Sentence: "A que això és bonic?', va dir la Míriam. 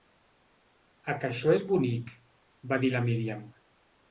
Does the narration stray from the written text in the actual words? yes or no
no